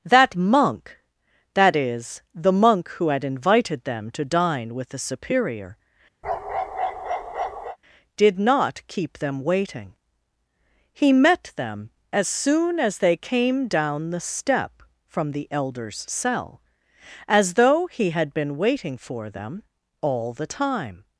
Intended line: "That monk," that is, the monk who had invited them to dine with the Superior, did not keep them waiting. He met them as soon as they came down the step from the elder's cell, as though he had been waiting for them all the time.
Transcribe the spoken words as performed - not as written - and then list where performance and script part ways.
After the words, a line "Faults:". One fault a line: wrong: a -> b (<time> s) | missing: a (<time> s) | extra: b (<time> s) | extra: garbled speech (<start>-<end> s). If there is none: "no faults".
"That monk," that is, the monk who had invited them to dine with the Superior, did not keep them waiting. He met them as soon as they came down the step from the elder's cell, as though he had been waiting for them all the time.
Faults:
no faults